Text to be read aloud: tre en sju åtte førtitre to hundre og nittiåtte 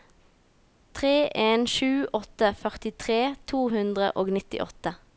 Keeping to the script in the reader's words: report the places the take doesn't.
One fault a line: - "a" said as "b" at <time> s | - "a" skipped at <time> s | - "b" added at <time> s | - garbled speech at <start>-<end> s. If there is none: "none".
none